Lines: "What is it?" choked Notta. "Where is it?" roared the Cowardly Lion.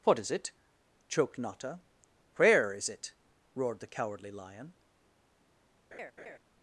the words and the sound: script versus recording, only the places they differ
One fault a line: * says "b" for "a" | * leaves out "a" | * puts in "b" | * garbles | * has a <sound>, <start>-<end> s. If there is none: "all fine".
* has a laugh, 5.9-6.4 s